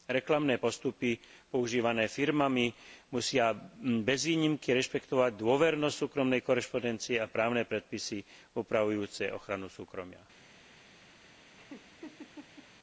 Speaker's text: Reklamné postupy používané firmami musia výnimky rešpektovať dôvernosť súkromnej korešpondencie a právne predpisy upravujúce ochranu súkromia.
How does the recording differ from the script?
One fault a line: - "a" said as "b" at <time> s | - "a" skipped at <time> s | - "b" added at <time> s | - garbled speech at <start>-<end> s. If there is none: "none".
- "bez" added at 4.0 s